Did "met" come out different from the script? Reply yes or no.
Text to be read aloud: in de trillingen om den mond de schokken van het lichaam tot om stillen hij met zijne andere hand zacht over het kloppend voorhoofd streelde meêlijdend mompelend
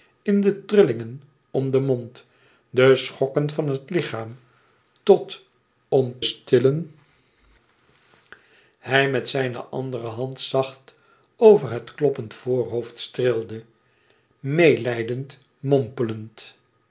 no